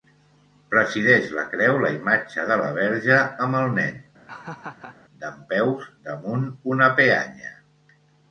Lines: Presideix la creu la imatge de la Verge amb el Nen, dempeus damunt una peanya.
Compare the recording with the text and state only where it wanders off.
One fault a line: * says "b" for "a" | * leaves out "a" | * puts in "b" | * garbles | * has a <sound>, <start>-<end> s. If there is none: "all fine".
* has a laugh, 4.3-5.0 s